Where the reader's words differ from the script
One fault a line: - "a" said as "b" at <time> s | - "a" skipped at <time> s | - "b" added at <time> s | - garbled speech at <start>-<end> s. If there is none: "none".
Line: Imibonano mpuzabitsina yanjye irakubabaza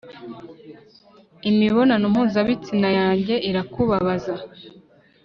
none